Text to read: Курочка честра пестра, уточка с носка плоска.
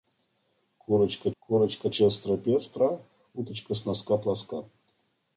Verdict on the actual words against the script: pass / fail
fail